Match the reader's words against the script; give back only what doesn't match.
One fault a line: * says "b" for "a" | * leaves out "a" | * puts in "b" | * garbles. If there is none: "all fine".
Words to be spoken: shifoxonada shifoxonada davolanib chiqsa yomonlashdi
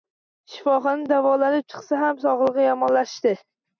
* leaves out "shifoxonada"
* puts in "ham sog`ligi"